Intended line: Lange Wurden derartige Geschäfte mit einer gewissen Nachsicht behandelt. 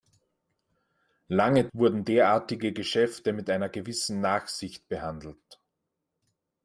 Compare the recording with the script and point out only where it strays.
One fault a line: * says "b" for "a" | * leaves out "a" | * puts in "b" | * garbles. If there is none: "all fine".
all fine